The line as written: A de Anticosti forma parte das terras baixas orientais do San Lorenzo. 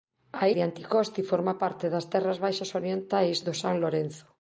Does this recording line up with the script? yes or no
yes